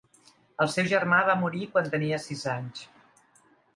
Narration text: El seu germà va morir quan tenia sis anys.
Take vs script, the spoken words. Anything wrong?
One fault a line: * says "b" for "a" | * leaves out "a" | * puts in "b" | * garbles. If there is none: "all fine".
all fine